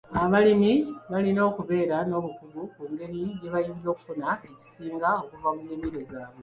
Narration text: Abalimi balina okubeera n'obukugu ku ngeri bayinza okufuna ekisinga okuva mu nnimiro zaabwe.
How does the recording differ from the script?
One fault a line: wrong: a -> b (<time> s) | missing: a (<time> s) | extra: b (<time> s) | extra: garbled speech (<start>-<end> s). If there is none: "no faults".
extra: gye (3.4 s)